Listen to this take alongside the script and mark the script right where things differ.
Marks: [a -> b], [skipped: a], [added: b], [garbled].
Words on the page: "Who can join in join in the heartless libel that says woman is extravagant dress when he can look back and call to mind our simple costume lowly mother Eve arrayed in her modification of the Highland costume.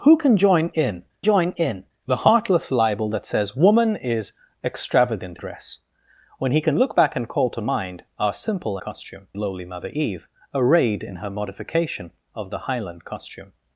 "Who can join in join in the heartless libel that says woman is extravagant dress when he can look back and call to mind our simple costume lowly mother Eve arrayed in her modification of the Highland costume.